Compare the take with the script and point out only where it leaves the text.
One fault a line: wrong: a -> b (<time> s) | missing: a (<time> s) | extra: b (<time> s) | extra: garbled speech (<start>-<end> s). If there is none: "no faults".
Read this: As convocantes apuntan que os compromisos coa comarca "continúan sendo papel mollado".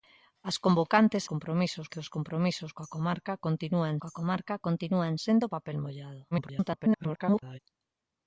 wrong: apuntan -> compromisos (1.3 s)
extra: coa comarca continúan (4.0 s)
extra: garbled speech (6.3-7.6 s)